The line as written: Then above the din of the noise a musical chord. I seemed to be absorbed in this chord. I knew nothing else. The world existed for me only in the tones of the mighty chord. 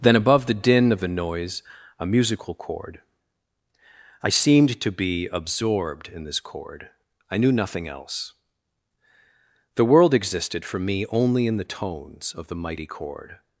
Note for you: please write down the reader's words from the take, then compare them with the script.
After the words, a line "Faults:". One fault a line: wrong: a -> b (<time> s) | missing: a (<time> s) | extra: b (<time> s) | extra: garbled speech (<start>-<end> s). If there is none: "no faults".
Then above the din of the noise a musical chord. I seemed to be absorbed in this chord. I knew nothing else. The world existed for me only in the tones of the mighty chord.
Faults:
no faults